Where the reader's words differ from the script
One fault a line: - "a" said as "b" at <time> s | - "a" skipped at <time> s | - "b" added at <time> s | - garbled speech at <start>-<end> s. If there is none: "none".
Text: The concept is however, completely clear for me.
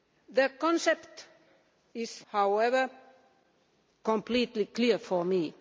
none